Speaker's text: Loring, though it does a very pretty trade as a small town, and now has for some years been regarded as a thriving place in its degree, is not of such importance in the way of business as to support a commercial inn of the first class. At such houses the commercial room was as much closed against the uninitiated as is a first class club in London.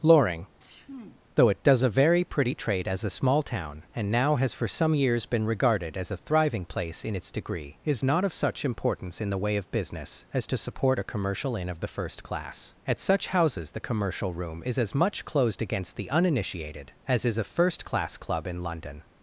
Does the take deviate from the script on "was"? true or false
true